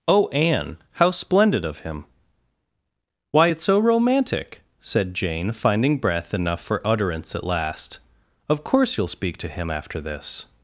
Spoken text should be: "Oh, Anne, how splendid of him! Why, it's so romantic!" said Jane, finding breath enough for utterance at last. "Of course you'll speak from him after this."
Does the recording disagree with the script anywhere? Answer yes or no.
yes